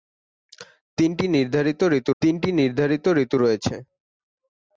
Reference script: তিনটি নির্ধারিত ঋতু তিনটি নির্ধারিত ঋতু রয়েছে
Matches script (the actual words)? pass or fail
pass